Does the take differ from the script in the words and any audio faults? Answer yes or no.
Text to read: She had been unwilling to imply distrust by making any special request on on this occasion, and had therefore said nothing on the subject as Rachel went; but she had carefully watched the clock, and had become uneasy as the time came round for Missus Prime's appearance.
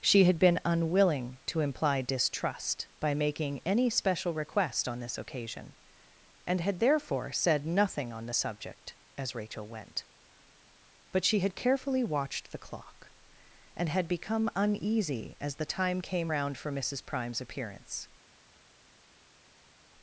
yes